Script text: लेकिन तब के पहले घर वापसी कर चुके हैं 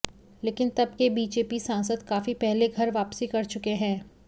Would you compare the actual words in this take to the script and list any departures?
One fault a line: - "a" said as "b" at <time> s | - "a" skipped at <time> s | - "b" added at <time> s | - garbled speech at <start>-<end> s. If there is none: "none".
- "बीजेपी सांसद काफी" added at 1.1 s